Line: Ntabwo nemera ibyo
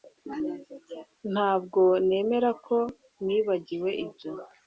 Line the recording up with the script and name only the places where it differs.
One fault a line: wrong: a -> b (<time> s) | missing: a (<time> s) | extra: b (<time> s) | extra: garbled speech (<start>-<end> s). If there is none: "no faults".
extra: ko nibagiwe (2.6 s)